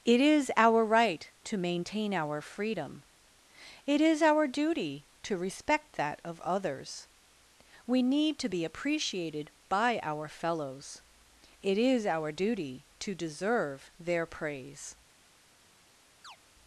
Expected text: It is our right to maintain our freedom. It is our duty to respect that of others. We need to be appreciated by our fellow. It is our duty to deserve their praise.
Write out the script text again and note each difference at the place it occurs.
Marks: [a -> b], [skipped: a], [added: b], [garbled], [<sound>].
It is our right to maintain our freedom. It is our duty to respect that of others. We need to be appreciated by our [fellow. -> fellows] It is our duty to deserve their praise. [chirp]